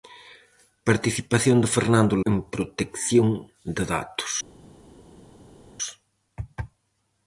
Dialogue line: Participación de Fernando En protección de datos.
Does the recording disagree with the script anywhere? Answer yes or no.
no